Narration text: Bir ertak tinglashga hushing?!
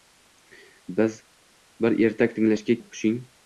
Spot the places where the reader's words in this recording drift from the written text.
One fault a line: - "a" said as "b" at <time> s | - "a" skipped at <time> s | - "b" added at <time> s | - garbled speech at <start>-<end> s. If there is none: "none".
none